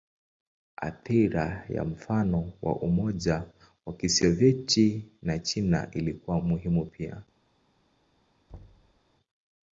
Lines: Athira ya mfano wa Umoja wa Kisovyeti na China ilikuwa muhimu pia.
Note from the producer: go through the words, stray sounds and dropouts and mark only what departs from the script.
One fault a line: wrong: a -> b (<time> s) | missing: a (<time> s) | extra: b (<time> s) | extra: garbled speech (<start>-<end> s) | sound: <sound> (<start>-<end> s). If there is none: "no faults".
sound: thud (8.5-9.0 s)